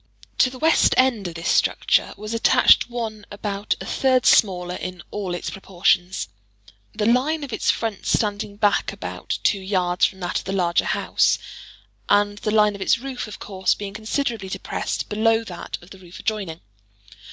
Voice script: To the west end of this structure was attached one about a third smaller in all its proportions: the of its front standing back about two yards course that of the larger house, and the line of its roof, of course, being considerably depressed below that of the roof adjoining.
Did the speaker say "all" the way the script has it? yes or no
yes